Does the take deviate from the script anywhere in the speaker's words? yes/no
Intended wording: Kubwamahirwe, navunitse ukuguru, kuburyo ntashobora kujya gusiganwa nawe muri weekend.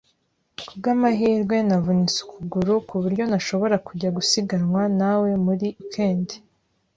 no